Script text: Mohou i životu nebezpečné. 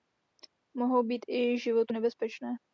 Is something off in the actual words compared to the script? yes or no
yes